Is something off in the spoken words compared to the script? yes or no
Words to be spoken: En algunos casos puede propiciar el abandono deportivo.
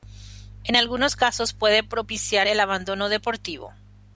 no